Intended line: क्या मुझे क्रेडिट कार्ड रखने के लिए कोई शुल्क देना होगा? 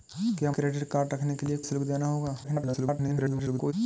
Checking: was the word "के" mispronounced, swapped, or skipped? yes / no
no